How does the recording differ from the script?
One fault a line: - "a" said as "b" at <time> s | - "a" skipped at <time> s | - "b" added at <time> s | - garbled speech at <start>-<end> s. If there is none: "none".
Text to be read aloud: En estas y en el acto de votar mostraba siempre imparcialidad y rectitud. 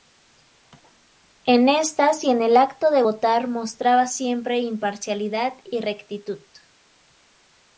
none